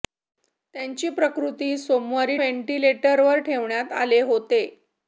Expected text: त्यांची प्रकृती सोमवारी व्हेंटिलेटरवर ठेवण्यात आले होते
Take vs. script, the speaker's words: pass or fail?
pass